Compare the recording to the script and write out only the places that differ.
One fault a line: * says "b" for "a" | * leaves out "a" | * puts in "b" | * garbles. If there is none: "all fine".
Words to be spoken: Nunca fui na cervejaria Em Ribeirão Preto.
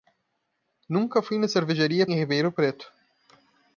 all fine